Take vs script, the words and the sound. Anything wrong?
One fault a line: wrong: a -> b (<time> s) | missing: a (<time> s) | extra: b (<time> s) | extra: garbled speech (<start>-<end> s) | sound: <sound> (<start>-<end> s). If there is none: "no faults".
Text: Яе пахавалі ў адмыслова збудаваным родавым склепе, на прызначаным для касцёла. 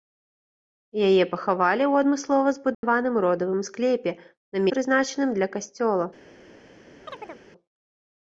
sound: dropout (2.7-2.8 s)
sound: chirp (7.0-7.4 s)